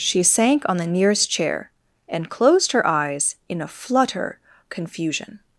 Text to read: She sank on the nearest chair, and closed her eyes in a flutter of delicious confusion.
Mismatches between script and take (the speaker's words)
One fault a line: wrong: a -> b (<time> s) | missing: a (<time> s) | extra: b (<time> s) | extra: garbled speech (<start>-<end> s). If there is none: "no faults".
missing: of delicious (4.4 s)